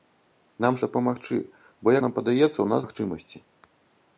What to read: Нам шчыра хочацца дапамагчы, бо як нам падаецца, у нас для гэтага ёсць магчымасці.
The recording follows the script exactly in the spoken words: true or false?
false